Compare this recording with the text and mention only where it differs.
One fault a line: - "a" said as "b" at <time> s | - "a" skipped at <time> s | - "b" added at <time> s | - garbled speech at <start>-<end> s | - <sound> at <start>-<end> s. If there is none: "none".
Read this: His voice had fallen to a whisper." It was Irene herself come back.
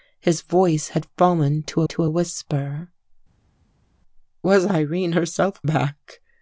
- "to" added at 1.9 s
- "It" skipped at 2.9 s
- "come" skipped at 5.6 s